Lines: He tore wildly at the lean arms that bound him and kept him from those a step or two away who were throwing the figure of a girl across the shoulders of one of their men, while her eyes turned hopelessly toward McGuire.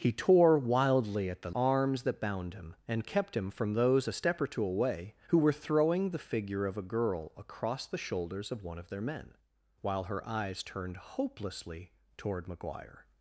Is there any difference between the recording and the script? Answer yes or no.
yes